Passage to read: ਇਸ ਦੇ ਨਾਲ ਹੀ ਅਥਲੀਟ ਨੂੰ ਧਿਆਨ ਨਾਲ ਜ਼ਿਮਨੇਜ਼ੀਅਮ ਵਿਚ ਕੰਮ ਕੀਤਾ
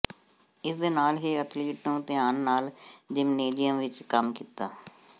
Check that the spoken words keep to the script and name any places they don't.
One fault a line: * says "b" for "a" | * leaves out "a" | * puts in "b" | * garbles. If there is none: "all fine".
all fine